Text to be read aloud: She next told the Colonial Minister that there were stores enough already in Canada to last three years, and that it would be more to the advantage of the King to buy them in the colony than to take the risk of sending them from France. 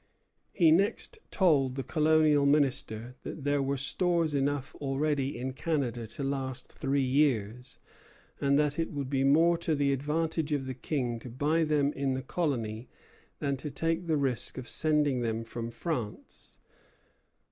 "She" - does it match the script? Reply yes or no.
no